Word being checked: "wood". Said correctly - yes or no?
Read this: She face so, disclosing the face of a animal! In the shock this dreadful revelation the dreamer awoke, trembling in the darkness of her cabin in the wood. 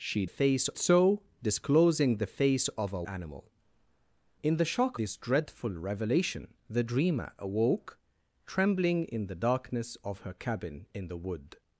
yes